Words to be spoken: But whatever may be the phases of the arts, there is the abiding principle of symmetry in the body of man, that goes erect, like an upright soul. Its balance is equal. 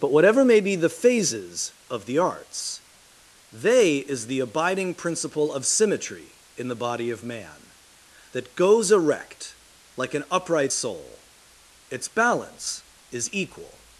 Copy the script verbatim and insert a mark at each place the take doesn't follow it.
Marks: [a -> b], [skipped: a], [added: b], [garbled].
But whatever may be the phases of the arts, [there -> they] is the abiding principle of symmetry in the body of man, that goes erect, like an upright soul. Its balance is equal.